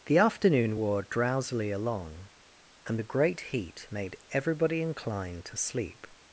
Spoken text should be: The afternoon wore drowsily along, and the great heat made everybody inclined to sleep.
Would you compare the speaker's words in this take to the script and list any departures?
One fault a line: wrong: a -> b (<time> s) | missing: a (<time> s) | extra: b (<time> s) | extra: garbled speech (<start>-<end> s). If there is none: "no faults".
no faults